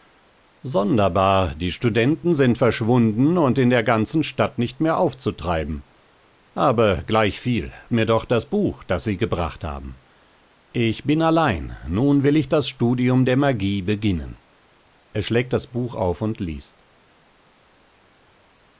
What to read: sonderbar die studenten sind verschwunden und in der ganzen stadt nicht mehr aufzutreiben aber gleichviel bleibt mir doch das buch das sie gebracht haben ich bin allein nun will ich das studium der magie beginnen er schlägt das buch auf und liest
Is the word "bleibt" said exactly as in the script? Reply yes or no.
no